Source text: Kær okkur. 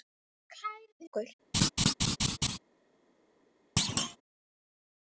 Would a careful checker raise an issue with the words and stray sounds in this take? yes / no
yes